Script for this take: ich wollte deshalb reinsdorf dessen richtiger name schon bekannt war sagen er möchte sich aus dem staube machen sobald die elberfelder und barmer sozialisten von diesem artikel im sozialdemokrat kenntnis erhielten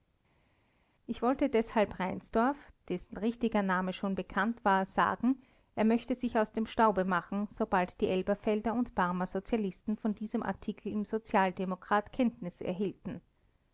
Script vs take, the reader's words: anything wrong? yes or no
no